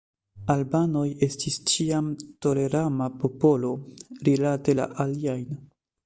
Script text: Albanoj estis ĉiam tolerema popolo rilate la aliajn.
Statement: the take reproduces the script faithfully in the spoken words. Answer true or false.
true